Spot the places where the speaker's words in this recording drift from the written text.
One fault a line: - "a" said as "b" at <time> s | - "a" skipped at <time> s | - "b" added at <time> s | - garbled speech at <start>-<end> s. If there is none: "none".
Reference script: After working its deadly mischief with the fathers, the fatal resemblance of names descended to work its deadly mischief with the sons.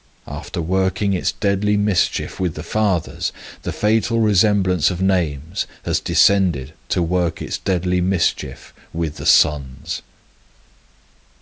- "has" added at 5.8 s